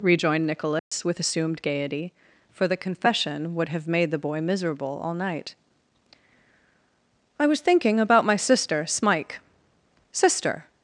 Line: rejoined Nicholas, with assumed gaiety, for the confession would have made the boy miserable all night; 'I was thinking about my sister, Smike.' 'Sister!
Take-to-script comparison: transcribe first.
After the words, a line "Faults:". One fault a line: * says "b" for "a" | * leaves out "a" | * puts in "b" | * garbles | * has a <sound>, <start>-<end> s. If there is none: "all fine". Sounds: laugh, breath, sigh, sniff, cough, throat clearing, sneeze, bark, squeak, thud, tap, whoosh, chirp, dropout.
rejoined Nicholas, with assumed gaiety, for the confession would have made the boy miserable all night; 'I was thinking about my sister, Smike.' 'Sister!
Faults:
* has a dropout, 0.8-0.9 s